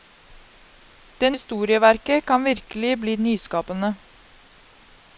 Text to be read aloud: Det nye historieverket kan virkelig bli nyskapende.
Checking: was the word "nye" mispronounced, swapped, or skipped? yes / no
yes